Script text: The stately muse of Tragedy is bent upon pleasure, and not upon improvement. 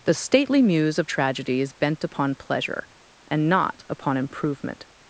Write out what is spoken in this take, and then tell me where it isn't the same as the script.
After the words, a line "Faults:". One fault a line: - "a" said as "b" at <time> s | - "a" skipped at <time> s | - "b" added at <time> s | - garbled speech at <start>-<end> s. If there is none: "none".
The stately muse of Tragedy is bent upon pleasure, and not upon improvement.
Faults:
none